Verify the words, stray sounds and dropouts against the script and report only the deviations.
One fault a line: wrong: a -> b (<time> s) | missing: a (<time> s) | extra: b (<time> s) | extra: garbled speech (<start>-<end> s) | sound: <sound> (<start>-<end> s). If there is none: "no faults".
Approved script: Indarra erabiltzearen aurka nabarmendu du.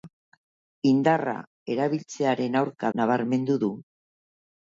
no faults